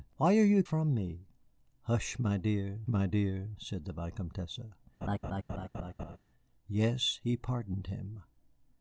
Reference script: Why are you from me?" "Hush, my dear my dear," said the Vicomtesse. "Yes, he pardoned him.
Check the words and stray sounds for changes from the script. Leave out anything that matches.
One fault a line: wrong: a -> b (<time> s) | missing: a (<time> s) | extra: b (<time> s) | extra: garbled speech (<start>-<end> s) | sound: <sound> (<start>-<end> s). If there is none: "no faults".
sound: laugh (5.0-6.2 s)